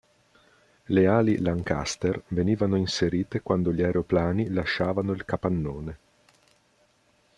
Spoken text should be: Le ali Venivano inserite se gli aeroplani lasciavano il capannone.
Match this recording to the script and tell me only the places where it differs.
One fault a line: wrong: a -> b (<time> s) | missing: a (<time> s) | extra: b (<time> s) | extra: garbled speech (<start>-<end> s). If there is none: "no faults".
extra: Lancaster (1.4 s)
wrong: se -> quando (3.4 s)